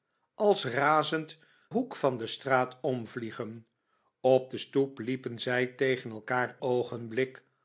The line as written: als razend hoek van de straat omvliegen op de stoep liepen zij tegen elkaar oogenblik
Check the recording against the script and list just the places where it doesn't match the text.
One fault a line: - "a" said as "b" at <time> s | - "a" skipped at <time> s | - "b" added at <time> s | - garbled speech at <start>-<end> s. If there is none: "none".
none